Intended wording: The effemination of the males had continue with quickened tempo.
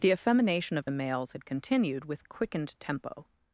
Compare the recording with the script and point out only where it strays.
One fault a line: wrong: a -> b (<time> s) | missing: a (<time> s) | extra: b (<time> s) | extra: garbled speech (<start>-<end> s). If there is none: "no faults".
wrong: continue -> continued (1.4 s)